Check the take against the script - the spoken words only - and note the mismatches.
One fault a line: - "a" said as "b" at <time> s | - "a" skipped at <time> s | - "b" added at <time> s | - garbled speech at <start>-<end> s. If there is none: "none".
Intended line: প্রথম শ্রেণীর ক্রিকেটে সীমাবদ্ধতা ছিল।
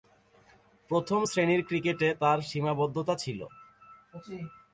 - "তার" added at 2.2 s